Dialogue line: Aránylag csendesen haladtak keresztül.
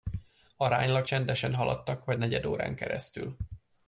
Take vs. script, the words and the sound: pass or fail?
fail